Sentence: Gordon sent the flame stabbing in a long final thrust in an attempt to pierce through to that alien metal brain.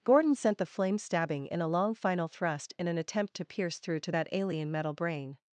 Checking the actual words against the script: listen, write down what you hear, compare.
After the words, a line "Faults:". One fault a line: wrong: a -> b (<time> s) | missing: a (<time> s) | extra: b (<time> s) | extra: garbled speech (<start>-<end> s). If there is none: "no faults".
Gordon sent the flame stabbing in a long final thrust in an attempt to pierce through to that alien metal brain.
Faults:
no faults